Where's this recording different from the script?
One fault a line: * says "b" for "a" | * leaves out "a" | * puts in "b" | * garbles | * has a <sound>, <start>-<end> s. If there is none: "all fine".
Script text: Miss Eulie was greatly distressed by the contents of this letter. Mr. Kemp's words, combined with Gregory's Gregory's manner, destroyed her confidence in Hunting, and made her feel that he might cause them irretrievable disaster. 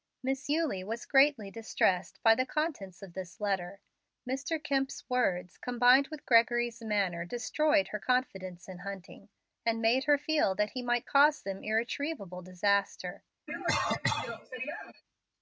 * leaves out "Gregory's"
* has a cough, 13.5-15.0 s